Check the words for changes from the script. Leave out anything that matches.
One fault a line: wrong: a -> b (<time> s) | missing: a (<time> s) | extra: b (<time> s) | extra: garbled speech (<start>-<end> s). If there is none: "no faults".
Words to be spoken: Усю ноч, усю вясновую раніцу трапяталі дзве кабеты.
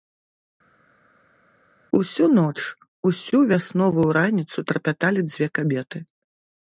no faults